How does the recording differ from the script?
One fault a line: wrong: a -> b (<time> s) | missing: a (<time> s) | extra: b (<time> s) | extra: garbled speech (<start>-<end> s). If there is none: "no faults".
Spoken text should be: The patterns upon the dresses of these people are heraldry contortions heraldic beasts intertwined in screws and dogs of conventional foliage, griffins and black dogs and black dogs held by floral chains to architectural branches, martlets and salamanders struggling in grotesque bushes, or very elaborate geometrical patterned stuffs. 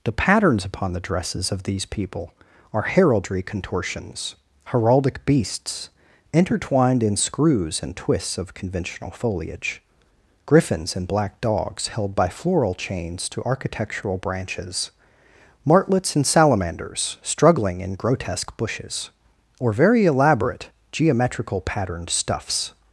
wrong: dogs -> twists (8.0 s)
missing: and black dogs (11.9 s)